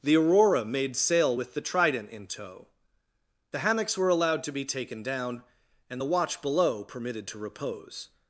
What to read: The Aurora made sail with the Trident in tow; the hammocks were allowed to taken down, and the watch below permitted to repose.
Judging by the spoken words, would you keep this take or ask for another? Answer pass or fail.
fail